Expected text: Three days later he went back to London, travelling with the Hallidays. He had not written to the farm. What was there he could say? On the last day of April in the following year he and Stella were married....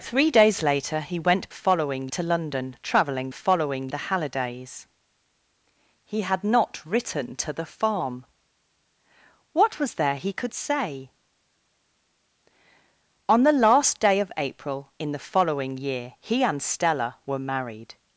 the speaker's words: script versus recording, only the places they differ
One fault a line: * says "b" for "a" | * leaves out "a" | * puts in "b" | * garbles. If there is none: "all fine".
* says "following" for "back"
* says "following" for "with"